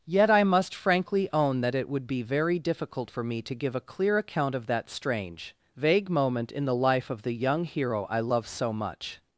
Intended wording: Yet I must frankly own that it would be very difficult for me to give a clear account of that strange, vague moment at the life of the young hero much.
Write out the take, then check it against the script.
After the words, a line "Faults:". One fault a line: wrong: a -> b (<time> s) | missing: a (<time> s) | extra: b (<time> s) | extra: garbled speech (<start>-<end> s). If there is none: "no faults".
Yet I must frankly own that it would be very difficult for me to give a clear account of that strange, vague moment in the life of the young hero I love so much.
Faults:
wrong: at -> in (6.5 s)
extra: I love so (8.0 s)